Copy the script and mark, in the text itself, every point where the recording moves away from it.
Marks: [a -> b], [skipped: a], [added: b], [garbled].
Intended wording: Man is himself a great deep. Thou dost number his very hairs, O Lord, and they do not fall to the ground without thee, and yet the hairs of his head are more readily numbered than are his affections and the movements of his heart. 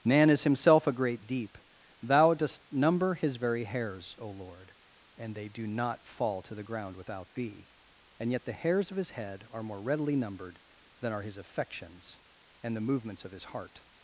Man is himself a great deep. Thou dost number his very hairs, O Lord, and they do not fall to the ground without thee, and yet the hairs of his head are more readily numbered than are his affections and the movements of his heart.